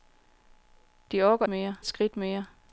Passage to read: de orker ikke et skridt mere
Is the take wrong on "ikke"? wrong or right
wrong